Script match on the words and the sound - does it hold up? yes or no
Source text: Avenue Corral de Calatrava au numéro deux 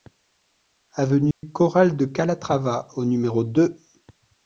no